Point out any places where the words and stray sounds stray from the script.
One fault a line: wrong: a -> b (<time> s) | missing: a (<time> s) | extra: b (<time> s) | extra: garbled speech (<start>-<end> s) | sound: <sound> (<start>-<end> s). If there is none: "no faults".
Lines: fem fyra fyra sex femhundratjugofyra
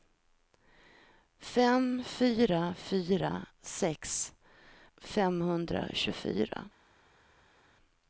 no faults